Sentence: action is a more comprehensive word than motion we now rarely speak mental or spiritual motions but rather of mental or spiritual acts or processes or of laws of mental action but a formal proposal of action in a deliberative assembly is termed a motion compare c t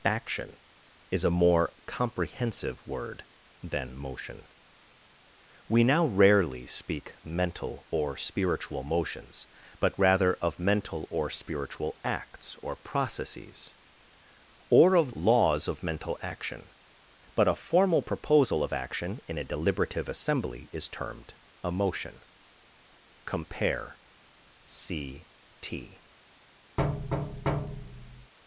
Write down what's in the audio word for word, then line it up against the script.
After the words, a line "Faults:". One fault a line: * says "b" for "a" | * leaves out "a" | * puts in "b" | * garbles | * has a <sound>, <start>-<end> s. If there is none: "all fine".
action is a more comprehensive word than motion we now rarely speak mental or spiritual motions but rather of mental or spiritual acts or processes or of laws of mental action but a formal proposal of action in a deliberative assembly is termed a motion compare c t
Faults:
* has a thud, 26.8-28.3 s